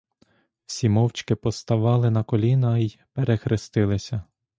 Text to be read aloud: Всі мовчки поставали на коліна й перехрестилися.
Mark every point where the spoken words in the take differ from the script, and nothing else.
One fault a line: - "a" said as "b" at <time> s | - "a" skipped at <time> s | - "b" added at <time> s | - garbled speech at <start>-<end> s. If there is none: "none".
none